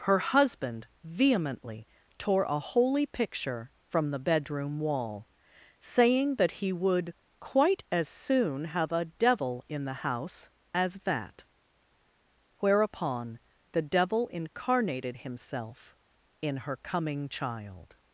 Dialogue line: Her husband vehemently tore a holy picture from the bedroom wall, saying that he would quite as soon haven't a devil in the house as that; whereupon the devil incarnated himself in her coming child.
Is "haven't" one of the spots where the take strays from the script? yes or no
yes